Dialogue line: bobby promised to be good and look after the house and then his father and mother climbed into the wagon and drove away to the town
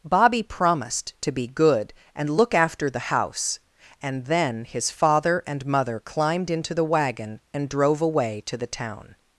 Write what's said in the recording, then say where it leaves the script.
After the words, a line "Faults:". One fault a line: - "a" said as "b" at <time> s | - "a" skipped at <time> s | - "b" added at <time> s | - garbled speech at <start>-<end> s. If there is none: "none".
bobby promised to be good and look after the house and then his father and mother climbed into the wagon and drove away to the town
Faults:
none